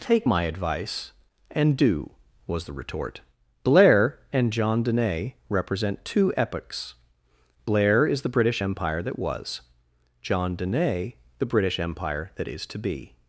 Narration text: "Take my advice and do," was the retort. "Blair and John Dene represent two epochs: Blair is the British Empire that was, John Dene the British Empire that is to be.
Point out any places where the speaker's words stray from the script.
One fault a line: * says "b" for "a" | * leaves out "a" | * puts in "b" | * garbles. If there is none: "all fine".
all fine